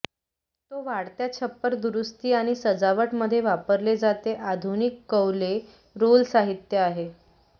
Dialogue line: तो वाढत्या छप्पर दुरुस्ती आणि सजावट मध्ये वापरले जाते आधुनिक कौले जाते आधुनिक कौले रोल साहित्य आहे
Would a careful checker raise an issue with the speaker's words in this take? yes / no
yes